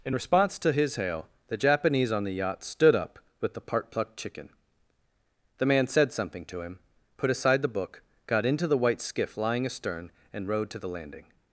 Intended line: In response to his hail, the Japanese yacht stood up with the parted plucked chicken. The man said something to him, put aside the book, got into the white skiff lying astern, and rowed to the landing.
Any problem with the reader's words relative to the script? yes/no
yes